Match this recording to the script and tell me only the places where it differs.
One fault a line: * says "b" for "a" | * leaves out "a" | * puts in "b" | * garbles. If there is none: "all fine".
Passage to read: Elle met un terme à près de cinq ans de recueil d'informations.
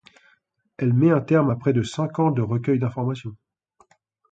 all fine